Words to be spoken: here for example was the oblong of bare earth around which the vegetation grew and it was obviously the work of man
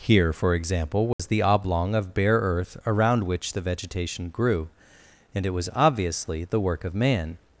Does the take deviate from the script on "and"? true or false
false